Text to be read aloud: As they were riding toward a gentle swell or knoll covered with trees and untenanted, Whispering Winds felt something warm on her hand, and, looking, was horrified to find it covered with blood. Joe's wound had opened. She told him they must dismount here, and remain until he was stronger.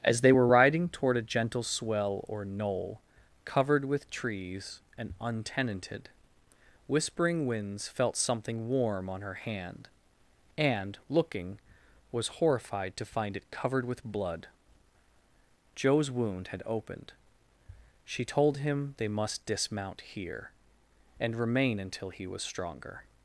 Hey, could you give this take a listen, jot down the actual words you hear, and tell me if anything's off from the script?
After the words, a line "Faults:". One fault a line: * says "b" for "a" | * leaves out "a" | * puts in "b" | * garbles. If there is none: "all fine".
As they were riding toward a gentle swell or knoll covered with trees and untenanted, Whispering Winds felt something warm on her hand, and, looking, was horrified to find it covered with blood. Joe's wound had opened. She told him they must dismount here, and remain until he was stronger.
Faults:
all fine